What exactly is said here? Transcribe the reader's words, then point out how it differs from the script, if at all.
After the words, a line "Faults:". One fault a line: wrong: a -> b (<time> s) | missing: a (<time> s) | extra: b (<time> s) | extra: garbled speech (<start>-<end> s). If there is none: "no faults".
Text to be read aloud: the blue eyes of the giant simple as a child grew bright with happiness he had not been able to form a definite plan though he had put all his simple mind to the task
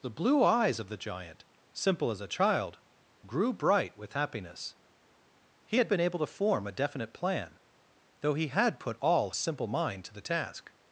the blue eyes of the giant simple as a child grew bright with happiness he had been able to form a definite plan though he had put all simple mind to the task
Faults:
missing: not (5.9 s)
missing: his (9.3 s)